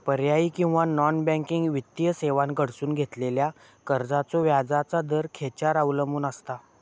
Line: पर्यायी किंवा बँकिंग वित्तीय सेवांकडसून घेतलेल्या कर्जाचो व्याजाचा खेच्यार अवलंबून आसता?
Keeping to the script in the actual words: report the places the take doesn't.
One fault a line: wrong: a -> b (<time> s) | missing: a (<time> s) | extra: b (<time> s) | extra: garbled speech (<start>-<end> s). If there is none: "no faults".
extra: नॉन (0.8 s)
extra: दर (5.0 s)